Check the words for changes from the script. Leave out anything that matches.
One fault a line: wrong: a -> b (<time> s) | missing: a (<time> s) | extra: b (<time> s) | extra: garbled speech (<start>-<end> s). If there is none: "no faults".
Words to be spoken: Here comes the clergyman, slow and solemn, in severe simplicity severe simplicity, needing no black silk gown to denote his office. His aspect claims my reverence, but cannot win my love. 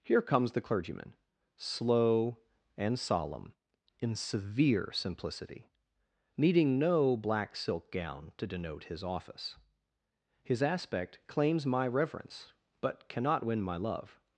missing: severe simplicity (5.7 s)